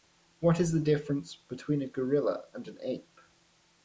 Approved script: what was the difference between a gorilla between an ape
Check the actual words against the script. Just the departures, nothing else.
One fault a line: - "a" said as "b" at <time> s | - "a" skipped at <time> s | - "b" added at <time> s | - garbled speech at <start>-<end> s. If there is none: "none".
- "was" said as "is" at 0.6 s
- "between" said as "and" at 2.5 s